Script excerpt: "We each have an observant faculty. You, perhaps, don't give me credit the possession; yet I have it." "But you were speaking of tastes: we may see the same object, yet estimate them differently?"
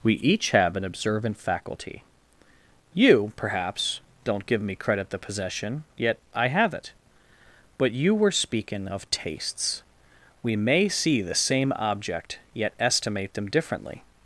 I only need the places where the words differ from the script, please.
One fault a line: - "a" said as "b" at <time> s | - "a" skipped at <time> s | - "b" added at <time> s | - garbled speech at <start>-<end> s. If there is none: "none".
none